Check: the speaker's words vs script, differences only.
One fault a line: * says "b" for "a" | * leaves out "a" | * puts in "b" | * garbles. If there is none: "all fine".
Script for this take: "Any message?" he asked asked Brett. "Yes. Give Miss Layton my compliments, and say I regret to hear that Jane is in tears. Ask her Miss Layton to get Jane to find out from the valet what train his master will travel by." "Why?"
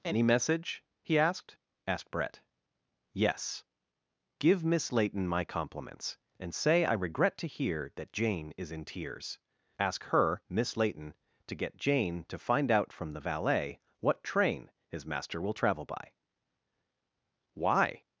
all fine